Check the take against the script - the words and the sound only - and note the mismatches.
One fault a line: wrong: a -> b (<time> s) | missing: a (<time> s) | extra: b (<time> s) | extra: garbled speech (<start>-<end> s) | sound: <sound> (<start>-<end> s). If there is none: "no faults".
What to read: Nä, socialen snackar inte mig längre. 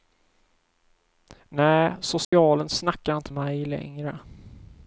sound: dropout (2.2-2.3 s)